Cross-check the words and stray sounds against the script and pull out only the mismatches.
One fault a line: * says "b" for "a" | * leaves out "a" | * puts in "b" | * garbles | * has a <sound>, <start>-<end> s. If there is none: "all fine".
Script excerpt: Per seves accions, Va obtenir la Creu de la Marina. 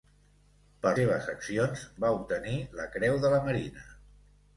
all fine